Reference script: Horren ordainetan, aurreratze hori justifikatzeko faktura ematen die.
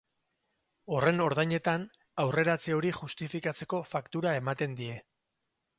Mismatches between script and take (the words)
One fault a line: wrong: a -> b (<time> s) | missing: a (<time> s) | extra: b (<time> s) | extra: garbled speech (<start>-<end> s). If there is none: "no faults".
no faults